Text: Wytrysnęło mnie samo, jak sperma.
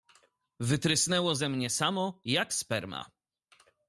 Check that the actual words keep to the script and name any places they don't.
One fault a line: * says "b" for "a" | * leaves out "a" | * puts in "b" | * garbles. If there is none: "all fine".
* puts in "ze"